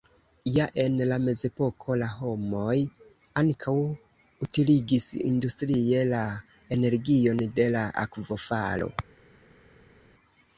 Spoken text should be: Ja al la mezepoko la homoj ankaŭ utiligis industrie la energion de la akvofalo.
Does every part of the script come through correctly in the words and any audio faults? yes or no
no